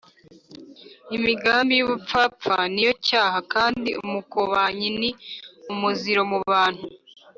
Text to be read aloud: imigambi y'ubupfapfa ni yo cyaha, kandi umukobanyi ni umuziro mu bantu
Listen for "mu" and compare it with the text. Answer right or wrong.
right